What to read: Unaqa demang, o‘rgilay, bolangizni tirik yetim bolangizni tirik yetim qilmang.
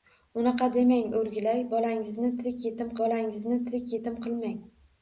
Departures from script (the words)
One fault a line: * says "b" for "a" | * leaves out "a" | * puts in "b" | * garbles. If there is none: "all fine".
all fine